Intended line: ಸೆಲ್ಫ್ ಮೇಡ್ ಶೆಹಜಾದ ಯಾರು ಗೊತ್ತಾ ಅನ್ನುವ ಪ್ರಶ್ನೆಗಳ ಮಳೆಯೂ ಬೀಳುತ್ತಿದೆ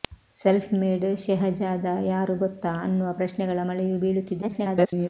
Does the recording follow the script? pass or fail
fail